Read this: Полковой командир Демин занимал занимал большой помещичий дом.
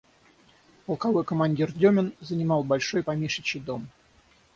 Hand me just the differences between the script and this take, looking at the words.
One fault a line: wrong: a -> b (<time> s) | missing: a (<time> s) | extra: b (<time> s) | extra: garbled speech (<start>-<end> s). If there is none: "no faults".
missing: занимал (2.6 s)